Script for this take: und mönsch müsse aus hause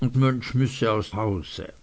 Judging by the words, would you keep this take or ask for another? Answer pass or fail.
pass